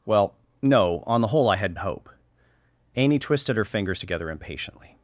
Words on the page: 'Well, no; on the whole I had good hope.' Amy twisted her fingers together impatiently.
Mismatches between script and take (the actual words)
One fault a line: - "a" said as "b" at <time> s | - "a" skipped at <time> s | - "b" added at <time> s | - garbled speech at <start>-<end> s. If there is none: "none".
- "good" skipped at 1.8 s